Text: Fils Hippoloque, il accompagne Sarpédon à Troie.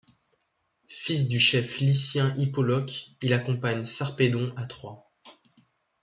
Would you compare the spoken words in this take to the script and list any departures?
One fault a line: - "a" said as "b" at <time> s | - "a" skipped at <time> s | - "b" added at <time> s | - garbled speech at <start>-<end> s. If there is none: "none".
- "du chef lycien" added at 1.3 s